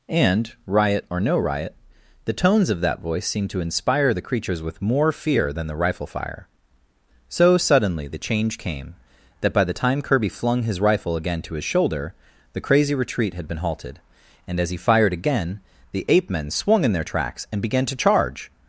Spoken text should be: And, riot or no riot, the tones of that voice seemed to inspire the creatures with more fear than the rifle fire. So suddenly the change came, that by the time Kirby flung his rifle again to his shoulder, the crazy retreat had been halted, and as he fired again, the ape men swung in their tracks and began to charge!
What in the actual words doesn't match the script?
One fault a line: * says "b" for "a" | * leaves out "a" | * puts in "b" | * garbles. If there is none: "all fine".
all fine